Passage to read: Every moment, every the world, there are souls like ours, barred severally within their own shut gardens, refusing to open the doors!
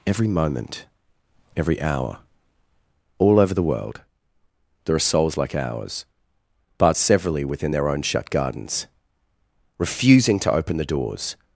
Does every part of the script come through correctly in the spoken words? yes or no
no